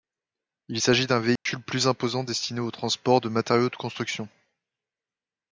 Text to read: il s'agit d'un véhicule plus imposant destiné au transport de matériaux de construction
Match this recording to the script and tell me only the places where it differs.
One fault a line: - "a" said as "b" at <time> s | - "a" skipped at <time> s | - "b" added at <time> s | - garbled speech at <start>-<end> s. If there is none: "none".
none